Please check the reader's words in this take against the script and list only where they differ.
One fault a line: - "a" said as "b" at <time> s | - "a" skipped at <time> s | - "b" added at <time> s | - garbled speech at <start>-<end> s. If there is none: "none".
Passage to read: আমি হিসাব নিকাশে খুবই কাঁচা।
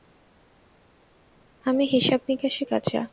- "খুবই" skipped at 2.6 s